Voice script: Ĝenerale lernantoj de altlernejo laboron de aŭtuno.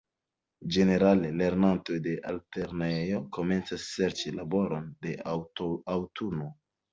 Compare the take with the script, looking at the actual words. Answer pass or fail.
fail